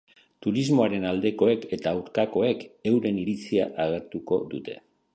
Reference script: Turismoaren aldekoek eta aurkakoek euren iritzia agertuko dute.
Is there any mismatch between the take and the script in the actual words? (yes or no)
no